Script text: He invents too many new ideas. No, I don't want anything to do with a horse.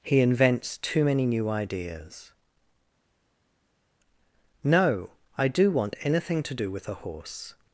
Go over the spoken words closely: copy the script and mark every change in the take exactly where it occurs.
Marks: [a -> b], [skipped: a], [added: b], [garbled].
He invents too many new ideas. No, I [don't -> do] want anything to do with a horse.